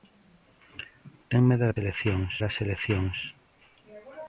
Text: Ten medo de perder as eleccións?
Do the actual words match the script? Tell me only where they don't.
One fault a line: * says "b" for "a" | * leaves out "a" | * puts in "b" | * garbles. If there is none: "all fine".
* says "eleccións" for "perder"